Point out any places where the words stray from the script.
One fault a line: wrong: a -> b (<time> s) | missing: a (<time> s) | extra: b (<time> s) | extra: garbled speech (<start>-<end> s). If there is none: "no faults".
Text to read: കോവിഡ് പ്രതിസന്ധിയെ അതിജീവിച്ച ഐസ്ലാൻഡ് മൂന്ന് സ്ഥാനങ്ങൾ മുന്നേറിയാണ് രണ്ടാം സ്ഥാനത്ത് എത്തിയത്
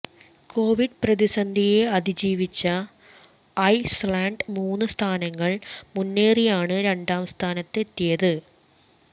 no faults